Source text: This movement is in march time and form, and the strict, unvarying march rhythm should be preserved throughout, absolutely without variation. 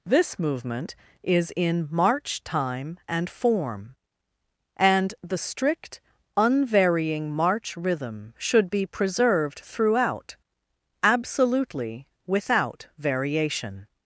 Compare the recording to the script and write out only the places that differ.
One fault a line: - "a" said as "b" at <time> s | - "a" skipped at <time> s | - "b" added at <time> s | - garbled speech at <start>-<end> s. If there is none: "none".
none